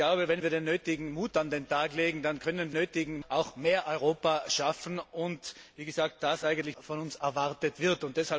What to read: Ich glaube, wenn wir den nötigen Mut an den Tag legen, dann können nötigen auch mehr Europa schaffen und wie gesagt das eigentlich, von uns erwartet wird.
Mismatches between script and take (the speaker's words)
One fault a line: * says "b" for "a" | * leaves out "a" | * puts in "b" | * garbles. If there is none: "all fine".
all fine